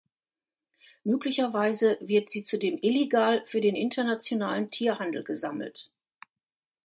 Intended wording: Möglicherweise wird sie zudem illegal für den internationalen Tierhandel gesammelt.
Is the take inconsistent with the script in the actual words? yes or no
no